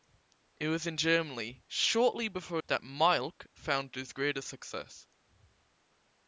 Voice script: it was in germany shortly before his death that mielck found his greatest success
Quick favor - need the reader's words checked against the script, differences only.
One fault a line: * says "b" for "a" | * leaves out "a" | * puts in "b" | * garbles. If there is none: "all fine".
* leaves out "his death"